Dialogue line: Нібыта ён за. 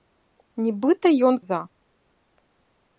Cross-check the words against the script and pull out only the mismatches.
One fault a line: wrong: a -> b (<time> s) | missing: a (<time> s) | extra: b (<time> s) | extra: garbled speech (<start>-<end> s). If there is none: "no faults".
no faults